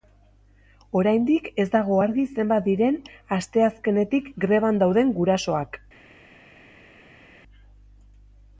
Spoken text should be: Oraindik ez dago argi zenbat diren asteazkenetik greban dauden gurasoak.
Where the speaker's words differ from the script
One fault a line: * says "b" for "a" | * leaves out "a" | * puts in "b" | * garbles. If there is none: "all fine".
all fine